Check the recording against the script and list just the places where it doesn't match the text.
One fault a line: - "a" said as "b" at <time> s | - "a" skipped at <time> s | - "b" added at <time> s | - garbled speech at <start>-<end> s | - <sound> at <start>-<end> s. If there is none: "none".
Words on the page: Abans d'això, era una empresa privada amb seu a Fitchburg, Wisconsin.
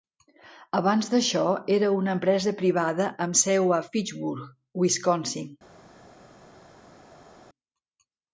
none